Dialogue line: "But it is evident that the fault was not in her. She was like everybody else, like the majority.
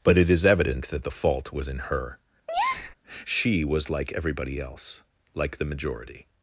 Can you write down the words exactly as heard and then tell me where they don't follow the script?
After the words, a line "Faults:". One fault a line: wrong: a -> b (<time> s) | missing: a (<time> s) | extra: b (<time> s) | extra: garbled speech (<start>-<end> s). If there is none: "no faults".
"But it is evident that the fault was in her. She was like everybody else, like the majority.
Faults:
missing: not (1.7 s)